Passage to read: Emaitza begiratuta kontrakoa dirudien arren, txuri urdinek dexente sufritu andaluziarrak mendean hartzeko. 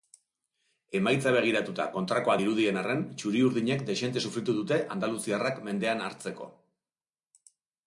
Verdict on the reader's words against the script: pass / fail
fail